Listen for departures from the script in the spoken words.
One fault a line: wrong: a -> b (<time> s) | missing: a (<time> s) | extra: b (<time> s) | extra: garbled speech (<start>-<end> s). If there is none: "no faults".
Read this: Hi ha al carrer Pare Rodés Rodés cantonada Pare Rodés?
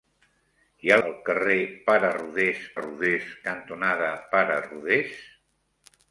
no faults